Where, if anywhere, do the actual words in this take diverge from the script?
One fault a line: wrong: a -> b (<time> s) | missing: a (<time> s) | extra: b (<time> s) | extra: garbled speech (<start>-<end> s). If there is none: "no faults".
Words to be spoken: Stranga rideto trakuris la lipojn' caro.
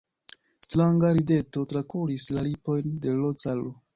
extra: de l (3.1 s)